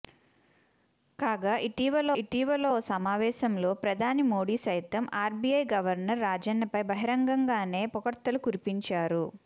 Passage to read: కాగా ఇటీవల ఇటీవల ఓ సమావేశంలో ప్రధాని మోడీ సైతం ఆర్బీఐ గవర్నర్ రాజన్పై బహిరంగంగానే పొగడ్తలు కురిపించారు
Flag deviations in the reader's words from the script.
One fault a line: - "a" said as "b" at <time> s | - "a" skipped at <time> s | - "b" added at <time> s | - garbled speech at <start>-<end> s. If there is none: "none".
none